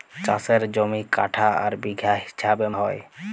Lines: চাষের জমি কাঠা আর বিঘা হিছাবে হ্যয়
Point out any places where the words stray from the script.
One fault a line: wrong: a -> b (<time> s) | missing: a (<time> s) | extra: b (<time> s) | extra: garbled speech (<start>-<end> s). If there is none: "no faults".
no faults